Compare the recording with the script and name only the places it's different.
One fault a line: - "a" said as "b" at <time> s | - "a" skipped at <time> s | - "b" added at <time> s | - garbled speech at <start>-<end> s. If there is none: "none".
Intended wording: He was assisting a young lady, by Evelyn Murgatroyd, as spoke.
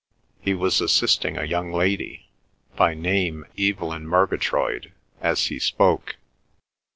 - "name" added at 2.9 s
- "he" added at 5.5 s